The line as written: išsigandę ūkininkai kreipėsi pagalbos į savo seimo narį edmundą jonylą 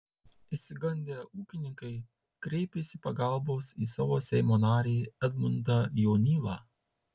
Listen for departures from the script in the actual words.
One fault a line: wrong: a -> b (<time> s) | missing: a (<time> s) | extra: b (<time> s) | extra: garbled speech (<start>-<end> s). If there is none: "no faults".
no faults